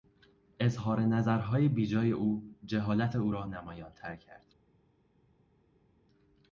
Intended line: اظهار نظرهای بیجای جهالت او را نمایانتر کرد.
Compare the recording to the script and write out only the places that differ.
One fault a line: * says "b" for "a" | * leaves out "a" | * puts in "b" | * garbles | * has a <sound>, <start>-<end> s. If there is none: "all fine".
* puts in "او"